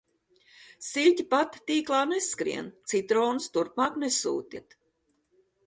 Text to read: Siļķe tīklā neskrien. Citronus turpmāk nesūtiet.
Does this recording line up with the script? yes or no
no